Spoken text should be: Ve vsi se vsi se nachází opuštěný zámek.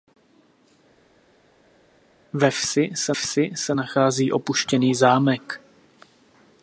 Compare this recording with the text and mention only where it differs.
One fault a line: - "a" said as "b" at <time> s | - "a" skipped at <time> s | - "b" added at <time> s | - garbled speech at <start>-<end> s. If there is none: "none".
none